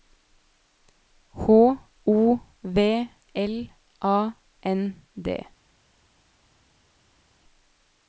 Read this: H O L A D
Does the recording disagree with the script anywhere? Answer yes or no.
yes